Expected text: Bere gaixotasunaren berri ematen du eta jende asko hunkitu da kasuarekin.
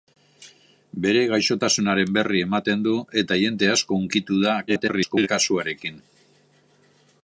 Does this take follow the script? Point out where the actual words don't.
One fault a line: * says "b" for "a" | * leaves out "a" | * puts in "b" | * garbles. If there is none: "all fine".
* garbles